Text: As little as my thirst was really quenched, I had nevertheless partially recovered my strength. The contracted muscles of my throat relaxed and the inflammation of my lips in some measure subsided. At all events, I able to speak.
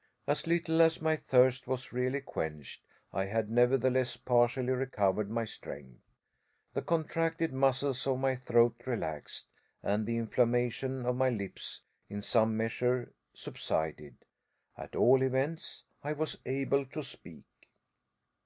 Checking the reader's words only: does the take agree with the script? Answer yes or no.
no